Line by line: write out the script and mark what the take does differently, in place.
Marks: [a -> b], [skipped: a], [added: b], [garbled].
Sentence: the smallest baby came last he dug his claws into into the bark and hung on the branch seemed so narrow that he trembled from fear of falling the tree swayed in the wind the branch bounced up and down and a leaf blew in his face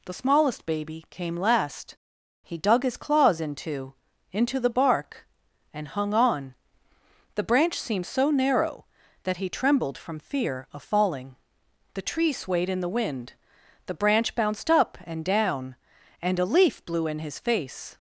the smallest baby came last he dug his claws into into the bark and hung on the branch seemed so narrow that he trembled from fear of falling the tree swayed in the wind the branch bounced up and down and a leaf blew in his face